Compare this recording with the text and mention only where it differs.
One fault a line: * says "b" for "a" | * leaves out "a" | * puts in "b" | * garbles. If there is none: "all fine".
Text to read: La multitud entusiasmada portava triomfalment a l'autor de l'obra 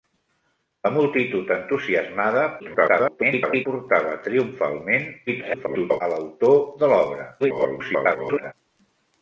* garbles
* garbles
* garbles